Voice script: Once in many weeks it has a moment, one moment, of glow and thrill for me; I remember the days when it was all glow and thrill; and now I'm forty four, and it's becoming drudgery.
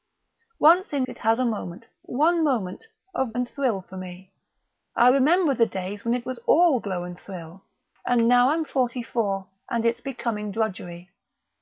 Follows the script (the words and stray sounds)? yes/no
no